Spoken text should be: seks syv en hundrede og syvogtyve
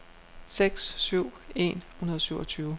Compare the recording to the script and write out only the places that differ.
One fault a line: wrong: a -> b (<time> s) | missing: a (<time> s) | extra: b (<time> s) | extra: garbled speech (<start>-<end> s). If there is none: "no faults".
no faults